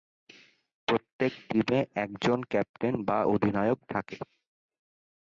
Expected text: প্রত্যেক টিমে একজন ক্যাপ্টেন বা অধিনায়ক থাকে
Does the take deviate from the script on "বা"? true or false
false